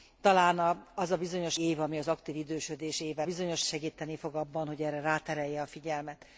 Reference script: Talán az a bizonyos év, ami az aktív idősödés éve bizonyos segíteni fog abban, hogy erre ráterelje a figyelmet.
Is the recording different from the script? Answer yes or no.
no